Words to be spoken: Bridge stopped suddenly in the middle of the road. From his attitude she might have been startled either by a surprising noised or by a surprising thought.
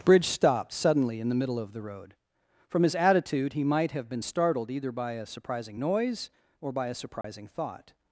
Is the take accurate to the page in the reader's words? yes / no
no